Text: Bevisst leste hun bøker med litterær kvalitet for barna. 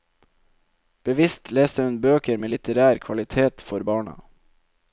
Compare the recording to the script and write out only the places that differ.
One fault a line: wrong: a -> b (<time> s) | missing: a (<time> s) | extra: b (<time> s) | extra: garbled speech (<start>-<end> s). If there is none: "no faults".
no faults